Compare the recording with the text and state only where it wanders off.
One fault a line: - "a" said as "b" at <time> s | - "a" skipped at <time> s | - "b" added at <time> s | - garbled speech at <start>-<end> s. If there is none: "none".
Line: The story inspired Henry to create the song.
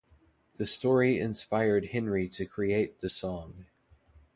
none